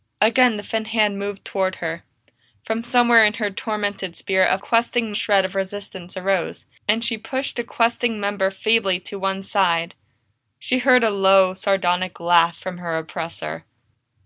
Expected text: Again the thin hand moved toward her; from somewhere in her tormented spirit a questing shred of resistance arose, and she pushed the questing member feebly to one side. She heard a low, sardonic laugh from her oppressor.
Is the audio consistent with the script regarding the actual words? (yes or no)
yes